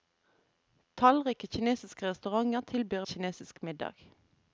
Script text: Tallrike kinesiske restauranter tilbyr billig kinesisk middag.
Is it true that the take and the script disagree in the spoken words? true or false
true